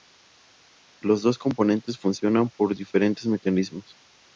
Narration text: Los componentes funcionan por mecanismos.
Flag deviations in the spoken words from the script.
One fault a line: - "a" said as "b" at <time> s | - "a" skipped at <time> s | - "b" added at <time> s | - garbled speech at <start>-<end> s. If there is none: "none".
- "dos" added at 1.2 s
- "diferentes" added at 2.8 s